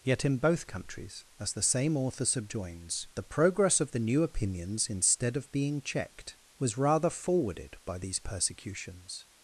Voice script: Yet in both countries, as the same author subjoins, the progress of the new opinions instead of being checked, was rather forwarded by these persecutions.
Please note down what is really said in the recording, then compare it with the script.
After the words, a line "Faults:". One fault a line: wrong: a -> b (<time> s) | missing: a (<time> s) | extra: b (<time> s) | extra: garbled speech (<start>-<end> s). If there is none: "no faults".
Yet in both countries, as the same author subjoins, the progress of the new opinions instead of being checked, was rather forwarded by these persecutions.
Faults:
no faults